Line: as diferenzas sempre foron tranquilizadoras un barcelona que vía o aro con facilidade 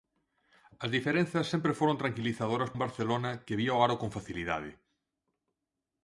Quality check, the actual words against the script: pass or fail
pass